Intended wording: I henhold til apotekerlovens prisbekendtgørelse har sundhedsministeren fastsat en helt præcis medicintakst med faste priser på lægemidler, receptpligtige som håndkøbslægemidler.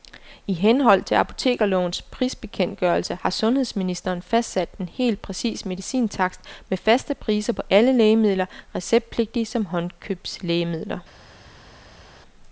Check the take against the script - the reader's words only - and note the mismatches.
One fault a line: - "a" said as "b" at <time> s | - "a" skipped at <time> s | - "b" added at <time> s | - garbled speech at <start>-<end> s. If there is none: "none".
- "alle" added at 7.7 s